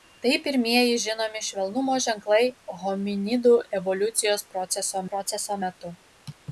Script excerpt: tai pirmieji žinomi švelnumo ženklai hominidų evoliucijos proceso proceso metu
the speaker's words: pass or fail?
pass